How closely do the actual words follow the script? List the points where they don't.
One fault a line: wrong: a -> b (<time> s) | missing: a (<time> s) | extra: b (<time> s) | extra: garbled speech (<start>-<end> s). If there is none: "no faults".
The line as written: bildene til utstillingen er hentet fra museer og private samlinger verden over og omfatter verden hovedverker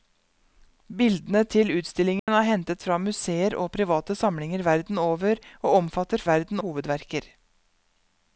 no faults